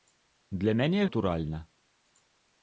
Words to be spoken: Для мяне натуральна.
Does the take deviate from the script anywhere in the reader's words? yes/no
no